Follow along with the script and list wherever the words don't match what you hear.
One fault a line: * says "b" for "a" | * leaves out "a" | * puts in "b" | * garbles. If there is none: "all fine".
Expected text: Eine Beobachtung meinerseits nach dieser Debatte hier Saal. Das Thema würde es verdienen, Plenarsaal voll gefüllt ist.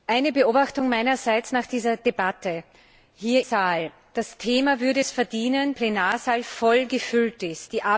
all fine